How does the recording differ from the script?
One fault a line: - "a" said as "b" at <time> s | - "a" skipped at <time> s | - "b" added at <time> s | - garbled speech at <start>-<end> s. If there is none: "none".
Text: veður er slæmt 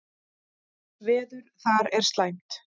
- "þar" added at 1.7 s